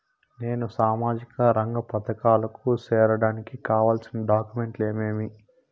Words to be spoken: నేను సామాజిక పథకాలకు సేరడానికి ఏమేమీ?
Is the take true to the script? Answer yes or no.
no